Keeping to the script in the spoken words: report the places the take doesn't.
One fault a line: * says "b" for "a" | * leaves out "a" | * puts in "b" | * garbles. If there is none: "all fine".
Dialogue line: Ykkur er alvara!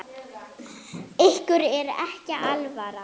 * puts in "ekki"